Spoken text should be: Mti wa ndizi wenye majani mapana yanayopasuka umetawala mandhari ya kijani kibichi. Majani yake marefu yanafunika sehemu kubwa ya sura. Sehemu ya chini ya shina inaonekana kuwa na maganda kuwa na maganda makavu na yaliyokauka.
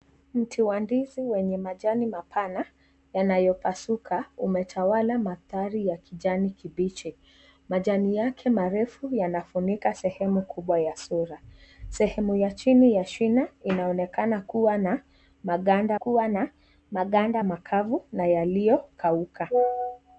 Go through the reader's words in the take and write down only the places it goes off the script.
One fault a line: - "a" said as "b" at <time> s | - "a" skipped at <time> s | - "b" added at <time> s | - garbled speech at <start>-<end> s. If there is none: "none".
none